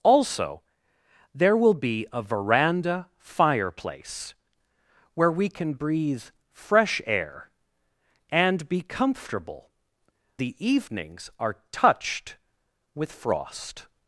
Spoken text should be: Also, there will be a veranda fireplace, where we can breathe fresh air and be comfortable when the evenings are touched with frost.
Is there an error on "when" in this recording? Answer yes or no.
yes